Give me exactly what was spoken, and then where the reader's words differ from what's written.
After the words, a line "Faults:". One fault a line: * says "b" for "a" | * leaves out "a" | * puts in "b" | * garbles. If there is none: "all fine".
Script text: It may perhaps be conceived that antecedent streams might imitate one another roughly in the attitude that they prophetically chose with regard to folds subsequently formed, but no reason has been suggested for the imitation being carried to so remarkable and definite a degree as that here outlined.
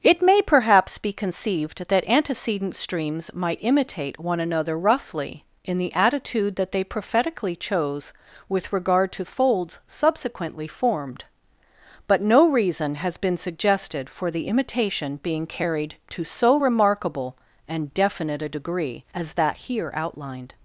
It may perhaps be conceived that antecedent streams might imitate one another roughly in the attitude that they prophetically chose with regard to folds subsequently formed, but no reason has been suggested for the imitation being carried to so remarkable and definite a degree as that here outlined.
Faults:
all fine